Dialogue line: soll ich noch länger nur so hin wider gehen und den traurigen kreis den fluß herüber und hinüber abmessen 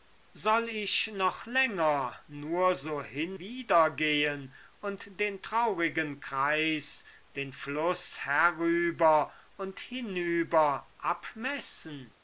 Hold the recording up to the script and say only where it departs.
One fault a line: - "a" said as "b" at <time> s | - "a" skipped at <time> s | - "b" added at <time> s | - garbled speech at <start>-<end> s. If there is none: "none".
none